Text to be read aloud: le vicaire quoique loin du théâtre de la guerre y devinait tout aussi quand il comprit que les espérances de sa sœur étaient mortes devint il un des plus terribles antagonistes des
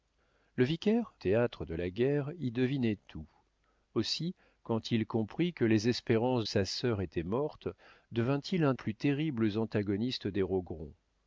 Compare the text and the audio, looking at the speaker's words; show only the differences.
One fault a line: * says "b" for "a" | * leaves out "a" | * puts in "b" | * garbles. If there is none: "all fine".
* leaves out "quoique loin du"
* leaves out "de"
* leaves out "des"